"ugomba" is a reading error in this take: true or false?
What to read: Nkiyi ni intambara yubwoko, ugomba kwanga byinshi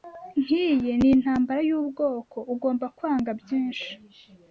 false